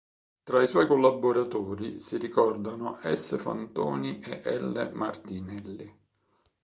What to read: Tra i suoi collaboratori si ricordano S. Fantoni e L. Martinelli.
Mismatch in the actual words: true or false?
false